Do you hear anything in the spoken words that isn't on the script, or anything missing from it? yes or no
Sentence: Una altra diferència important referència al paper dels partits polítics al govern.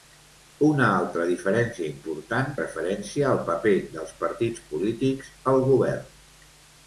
no